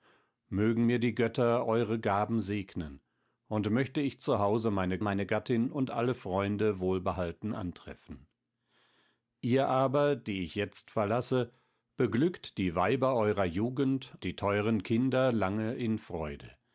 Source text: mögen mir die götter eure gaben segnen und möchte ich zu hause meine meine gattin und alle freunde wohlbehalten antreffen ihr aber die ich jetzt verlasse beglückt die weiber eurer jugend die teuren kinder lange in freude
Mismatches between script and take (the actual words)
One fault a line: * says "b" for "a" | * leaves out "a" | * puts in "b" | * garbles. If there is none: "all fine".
all fine